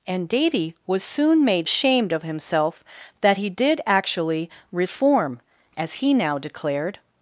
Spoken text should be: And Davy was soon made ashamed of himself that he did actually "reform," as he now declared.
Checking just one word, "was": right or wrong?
right